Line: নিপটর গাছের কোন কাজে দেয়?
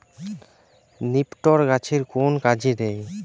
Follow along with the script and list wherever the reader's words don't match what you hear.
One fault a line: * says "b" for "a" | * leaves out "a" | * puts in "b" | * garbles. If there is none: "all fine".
all fine